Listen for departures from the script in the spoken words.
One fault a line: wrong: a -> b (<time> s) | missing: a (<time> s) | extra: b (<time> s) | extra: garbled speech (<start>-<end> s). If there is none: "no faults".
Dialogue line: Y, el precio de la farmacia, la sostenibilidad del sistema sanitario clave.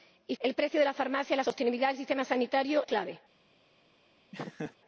no faults